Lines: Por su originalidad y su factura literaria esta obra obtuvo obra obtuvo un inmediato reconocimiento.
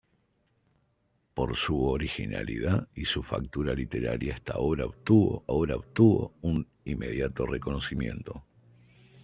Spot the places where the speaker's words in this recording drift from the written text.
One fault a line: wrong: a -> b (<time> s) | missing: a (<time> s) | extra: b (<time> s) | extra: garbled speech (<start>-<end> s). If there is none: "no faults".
no faults